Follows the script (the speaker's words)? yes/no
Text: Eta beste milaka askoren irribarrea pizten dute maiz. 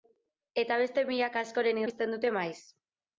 no